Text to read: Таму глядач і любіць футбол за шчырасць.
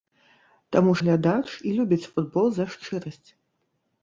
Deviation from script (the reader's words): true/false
false